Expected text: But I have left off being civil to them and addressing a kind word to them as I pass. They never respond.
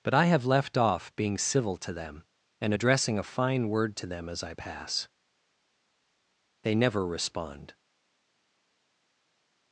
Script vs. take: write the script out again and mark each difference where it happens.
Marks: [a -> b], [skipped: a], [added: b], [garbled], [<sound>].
But I have left off being civil to them and addressing a [kind -> fine] word to them as I pass. They never respond.